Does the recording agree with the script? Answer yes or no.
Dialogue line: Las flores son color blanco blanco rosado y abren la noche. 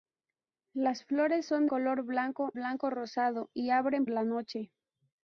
yes